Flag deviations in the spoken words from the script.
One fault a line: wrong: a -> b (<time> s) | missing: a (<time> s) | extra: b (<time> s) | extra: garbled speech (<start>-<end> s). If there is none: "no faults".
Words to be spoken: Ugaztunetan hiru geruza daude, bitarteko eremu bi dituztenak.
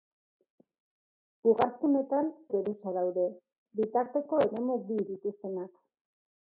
missing: hiru (2.3 s)